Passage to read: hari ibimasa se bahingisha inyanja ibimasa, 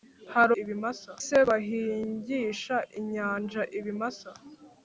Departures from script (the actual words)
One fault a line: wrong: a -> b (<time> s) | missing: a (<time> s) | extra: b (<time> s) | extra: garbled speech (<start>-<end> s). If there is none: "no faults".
no faults